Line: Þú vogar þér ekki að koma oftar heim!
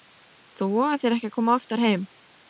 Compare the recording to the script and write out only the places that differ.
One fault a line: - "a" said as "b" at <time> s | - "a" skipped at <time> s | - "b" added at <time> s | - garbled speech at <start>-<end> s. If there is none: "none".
none